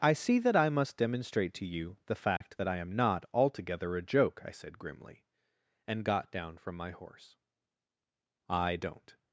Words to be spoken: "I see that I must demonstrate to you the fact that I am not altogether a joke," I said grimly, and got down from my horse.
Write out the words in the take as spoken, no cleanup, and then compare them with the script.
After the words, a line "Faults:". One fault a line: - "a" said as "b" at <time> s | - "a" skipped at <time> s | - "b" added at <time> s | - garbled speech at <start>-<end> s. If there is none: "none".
"I see that I must demonstrate to you the fact that I am not altogether a joke," I said grimly, and got down from my horse. I don't
Faults:
- "I don't" added at 8.5 s